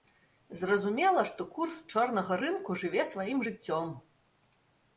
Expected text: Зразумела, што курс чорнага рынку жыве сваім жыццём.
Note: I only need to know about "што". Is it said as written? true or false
true